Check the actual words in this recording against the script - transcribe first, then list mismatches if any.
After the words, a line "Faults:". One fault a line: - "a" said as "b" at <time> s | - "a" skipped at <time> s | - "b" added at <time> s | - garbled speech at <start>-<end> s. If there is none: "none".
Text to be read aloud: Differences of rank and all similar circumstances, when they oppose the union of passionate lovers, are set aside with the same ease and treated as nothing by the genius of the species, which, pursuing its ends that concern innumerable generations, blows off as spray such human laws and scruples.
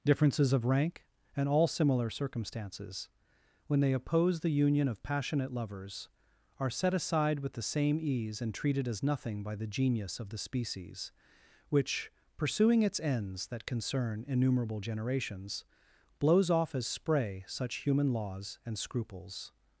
Differences of rank and all similar circumstances, when they oppose the union of passionate lovers, are set aside with the same ease and treated as nothing by the genius of the species, which, pursuing its ends that concern innumerable generations, blows off as spray such human laws and scruples.
Faults:
none